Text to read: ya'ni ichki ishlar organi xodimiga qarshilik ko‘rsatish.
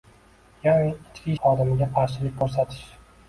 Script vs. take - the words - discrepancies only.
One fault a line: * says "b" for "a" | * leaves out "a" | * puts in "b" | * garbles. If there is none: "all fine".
* leaves out "ishlar organi"